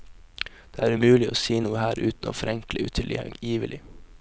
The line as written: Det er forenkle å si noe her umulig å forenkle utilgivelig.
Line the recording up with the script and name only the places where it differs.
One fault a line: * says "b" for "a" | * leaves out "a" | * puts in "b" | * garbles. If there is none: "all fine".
* says "umulig" for "forenkle"
* says "uten" for "umulig"